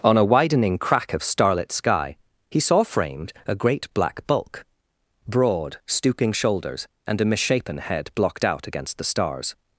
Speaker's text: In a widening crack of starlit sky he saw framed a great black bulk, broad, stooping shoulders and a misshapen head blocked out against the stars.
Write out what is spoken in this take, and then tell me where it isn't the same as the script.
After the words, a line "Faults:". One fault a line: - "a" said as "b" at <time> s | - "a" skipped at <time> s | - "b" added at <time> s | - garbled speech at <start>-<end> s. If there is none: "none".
On a widening crack of starlit sky he saw framed a great black bulk, broad, stooping shoulders and a misshapen head blocked out against the stars.
Faults:
- "In" said as "On" at 0.0 s